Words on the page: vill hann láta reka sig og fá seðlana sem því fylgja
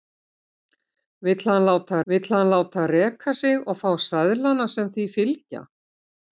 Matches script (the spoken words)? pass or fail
fail